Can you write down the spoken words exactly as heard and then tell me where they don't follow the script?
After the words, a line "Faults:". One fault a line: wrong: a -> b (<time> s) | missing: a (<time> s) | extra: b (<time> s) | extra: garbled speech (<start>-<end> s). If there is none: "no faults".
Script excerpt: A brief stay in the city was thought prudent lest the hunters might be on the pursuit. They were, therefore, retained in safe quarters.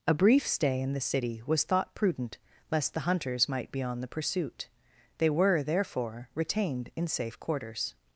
A brief stay in the city was thought prudent lest the hunters might be on the pursuit. They were, therefore, retained in safe quarters.
Faults:
no faults